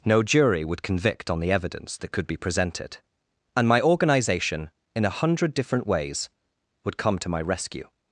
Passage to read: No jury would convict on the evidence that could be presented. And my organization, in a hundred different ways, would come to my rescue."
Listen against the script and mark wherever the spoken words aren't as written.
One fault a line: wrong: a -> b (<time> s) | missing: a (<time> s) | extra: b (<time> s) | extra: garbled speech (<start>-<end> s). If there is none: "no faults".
no faults